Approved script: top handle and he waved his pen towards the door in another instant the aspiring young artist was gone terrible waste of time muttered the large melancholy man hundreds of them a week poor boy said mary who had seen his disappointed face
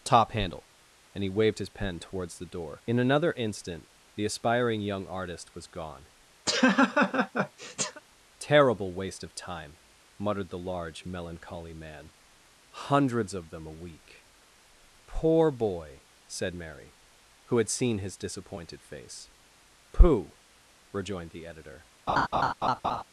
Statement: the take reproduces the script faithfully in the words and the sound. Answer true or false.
false